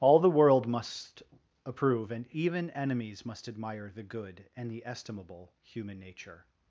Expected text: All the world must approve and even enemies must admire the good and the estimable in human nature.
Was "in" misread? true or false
true